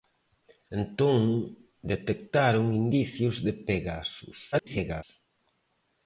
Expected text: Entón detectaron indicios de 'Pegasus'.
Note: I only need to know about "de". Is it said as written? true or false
true